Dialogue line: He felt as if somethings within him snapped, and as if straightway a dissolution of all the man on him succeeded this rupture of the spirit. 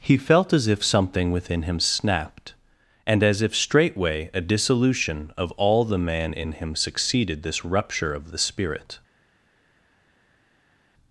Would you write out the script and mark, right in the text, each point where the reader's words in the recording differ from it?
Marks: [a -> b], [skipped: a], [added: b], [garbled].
He felt as if [somethings -> something] within him snapped, and as if straightway a dissolution of all the man [on -> in] him succeeded this rupture of the spirit.